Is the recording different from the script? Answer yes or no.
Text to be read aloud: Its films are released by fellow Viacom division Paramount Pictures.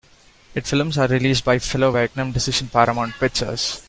no